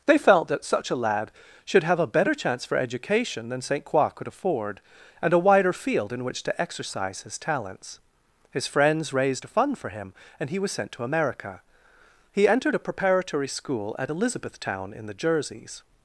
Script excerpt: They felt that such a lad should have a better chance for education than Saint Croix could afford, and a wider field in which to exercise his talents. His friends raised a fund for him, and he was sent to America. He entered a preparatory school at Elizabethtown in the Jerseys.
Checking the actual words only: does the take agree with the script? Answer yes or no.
yes